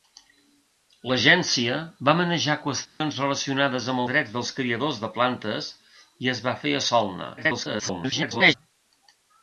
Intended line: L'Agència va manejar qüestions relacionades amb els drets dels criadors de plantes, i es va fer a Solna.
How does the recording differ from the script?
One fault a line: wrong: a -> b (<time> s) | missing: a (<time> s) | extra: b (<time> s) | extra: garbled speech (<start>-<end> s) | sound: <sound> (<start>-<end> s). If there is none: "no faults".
sound: dropout (2.9-3.0 s)
missing: els (4.0 s)
extra: garbled speech (7.4-8.5 s)